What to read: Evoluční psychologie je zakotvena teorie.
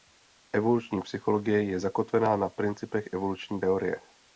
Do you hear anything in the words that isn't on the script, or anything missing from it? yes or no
yes